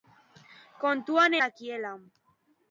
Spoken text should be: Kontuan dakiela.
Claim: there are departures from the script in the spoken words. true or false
false